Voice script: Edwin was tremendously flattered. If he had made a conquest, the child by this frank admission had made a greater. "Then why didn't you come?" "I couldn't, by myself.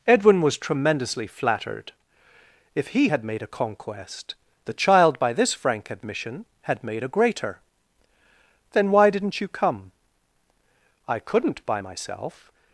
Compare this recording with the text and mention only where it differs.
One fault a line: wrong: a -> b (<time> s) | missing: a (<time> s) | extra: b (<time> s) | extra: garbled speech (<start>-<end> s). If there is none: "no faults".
no faults